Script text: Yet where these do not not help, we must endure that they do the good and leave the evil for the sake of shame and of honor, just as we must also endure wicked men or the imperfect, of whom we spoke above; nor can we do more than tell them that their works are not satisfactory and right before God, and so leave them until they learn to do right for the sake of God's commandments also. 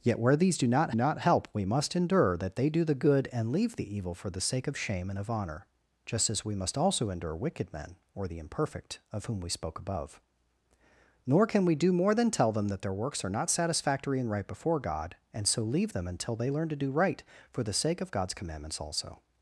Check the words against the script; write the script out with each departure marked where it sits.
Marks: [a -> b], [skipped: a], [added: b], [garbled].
Yet where these do not not help, we must endure that they do the good and leave the evil for the sake of shame and of honor, just as we must also endure wicked men or the imperfect, of whom we spoke above; nor can we do more than tell them that their works are not satisfactory and right before God, and so leave them until they learn to do right for the sake of God's commandments also.